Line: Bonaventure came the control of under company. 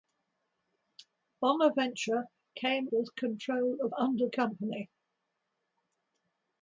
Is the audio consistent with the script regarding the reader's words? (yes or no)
yes